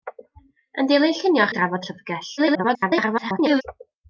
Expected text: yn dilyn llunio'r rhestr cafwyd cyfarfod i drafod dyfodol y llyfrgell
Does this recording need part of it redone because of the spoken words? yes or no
yes